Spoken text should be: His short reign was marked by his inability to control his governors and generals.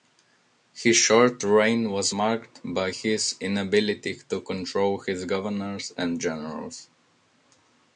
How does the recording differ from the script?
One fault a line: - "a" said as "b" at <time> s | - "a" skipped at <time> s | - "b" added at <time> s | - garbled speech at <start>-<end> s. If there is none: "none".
none